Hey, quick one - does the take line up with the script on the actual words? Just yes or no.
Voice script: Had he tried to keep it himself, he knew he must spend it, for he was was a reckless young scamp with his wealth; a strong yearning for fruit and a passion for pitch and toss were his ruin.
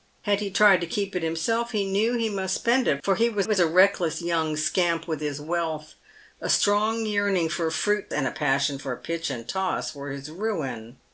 yes